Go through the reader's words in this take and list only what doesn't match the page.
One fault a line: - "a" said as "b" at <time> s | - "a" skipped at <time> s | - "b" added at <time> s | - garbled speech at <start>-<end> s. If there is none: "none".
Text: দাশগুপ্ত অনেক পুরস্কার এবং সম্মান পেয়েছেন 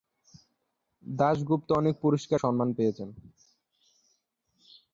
- "এবং" skipped at 2.4 s